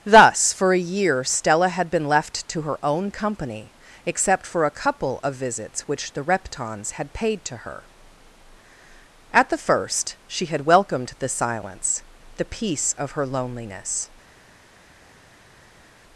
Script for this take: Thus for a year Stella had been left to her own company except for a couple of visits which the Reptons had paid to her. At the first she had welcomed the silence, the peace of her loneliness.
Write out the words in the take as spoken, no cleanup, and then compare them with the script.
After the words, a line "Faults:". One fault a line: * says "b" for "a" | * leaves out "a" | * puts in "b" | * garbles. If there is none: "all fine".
Thus for a year Stella had been left to her own company except for a couple of visits which the Reptons had paid to her. At the first she had welcomed the silence, the peace of her loneliness.
Faults:
all fine